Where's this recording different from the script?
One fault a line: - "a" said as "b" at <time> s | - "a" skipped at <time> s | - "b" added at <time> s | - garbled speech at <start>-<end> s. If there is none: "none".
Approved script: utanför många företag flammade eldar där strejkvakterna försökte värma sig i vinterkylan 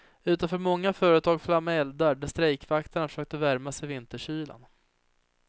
none